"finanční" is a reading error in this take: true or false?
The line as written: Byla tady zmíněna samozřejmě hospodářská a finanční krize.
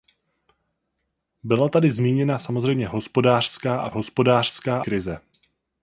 true